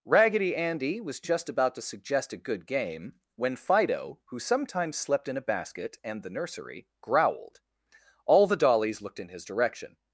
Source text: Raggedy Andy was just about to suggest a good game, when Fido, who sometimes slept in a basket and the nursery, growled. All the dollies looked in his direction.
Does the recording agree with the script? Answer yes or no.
yes